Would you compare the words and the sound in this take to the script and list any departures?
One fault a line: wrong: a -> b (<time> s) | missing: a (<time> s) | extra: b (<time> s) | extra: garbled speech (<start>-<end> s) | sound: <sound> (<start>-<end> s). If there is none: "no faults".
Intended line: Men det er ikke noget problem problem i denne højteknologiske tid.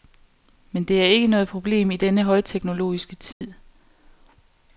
missing: problem (1.9 s)
sound: dropout (3.3-3.4 s)